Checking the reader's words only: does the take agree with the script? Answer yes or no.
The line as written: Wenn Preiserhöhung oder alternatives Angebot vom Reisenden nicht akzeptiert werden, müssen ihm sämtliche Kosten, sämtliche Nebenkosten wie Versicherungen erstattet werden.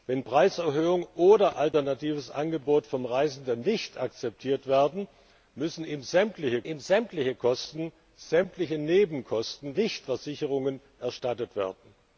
no